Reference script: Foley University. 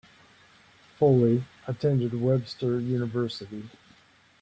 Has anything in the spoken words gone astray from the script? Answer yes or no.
yes